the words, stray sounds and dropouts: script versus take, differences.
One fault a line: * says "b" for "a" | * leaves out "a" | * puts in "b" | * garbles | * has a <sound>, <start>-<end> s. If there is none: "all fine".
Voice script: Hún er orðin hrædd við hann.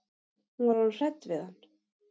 * says "var" for "er"